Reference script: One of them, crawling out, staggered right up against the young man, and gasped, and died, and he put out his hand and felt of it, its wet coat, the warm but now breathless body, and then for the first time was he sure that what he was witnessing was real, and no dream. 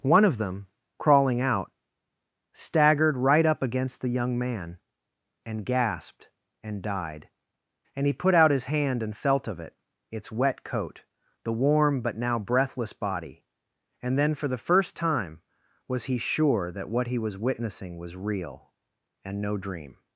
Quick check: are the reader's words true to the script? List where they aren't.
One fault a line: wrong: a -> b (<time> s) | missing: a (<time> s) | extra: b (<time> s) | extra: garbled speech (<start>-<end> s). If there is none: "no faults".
no faults